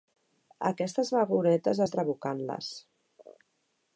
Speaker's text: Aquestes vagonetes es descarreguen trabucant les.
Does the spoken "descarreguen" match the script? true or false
false